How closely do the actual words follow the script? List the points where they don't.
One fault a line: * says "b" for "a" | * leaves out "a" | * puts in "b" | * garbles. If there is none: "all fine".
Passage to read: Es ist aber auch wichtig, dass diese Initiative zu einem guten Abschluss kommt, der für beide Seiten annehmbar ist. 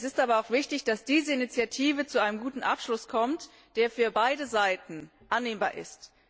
all fine